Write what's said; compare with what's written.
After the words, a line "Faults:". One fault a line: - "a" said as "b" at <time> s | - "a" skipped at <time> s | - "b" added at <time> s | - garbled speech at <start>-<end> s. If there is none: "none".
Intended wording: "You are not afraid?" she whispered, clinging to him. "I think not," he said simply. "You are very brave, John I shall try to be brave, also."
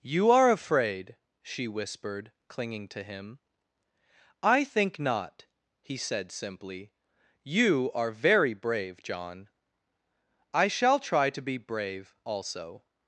"You are afraid?" she whispered, clinging to him. "I think not," he said simply. "You are very brave, John I shall try to be brave, also."
Faults:
- "not" skipped at 0.5 s